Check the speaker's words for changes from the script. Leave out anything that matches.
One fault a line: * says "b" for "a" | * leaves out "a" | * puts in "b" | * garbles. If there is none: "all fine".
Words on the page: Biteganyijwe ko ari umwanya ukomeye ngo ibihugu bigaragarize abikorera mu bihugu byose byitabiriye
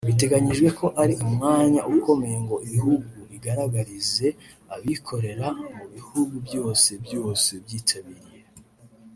* puts in "byose"